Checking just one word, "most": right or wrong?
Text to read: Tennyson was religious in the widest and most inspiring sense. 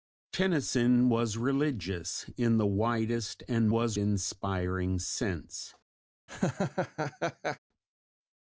wrong